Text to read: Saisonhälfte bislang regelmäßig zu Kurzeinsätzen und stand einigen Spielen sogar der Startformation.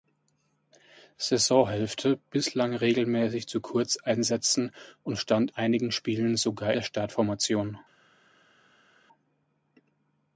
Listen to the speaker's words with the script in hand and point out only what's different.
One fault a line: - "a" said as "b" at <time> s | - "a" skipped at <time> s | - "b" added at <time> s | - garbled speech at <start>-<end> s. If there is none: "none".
none